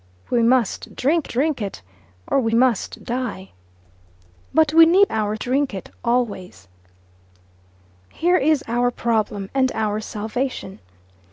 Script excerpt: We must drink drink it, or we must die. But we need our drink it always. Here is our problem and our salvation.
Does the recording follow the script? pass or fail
pass